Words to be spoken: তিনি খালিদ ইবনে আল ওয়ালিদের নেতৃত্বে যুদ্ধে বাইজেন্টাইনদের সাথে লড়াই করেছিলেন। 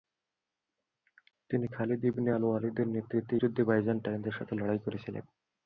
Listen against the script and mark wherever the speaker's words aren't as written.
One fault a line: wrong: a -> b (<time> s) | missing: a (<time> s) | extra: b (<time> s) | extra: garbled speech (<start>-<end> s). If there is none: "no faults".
no faults